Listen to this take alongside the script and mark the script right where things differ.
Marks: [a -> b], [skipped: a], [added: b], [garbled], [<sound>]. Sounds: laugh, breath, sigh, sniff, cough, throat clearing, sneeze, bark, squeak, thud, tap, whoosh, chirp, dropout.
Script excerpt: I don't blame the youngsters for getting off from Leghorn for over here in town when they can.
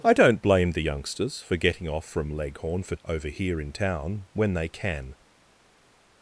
I don't blame the youngsters for getting off from Leghorn for over here in town when they can.